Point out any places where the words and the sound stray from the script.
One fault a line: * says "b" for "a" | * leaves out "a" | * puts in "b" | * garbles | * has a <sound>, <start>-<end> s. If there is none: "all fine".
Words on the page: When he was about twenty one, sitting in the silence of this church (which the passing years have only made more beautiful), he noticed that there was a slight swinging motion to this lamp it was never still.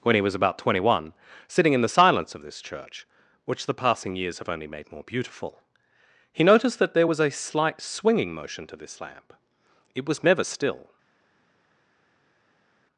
all fine